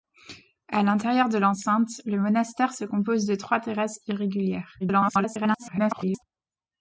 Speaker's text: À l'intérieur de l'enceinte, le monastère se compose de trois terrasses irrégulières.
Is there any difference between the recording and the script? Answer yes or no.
yes